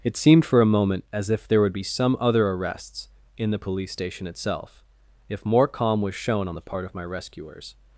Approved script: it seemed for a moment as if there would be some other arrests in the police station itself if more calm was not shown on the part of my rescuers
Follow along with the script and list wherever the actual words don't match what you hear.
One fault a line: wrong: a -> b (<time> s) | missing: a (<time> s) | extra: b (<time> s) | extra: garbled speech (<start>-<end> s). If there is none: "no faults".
missing: not (6.1 s)